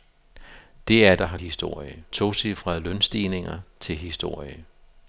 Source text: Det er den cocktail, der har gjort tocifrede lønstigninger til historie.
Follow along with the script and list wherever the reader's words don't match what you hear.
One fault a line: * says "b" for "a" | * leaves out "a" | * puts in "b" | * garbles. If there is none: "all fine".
* leaves out "den cocktail"
* says "historie" for "gjort"